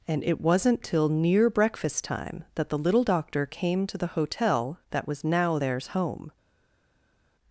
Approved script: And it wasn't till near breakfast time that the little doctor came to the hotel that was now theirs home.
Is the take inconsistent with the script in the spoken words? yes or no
no